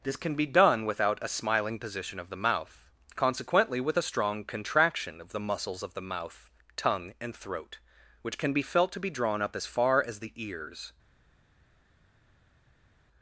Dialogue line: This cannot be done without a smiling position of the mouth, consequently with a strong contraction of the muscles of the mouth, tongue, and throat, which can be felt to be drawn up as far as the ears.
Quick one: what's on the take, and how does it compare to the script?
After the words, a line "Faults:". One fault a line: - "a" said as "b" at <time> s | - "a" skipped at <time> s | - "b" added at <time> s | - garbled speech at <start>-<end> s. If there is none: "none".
This can be done without a smiling position of the mouth, consequently with a strong contraction of the muscles of the mouth, tongue, and throat, which can be felt to be drawn up as far as the ears.
Faults:
- "cannot" said as "can" at 0.1 s